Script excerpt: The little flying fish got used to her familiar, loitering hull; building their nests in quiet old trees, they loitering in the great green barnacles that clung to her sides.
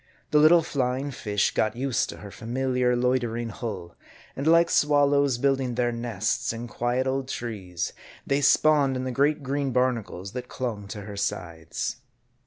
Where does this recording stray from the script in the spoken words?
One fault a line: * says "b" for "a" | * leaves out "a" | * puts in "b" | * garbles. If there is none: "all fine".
* puts in "and like swallows"
* says "spawned" for "loitering"